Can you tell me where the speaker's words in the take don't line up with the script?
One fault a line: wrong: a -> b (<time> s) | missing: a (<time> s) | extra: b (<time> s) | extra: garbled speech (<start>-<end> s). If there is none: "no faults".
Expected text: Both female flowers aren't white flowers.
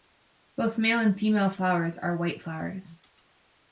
extra: male and (0.8 s)
wrong: aren't -> are (2.0 s)